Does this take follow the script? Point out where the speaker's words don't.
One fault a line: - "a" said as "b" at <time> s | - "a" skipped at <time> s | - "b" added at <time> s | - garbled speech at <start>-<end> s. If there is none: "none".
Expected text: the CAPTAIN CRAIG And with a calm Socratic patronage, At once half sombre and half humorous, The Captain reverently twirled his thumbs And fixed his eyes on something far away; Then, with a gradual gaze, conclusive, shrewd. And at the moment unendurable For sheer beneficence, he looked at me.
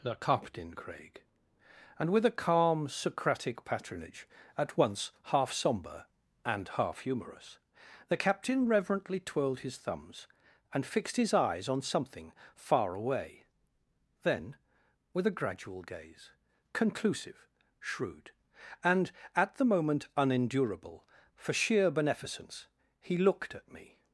none